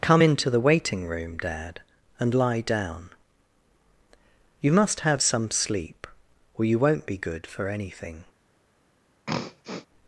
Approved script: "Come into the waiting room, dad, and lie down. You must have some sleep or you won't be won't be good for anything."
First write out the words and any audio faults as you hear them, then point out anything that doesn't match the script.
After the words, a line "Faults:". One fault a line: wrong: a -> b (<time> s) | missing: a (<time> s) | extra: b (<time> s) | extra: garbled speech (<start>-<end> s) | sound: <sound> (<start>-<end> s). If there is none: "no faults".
"Come into the waiting room, dad, and lie down. You must have some sleep or you won't be good for anything."
Faults:
missing: won't be (7.2 s)
sound: throat clearing (9.3-9.9 s)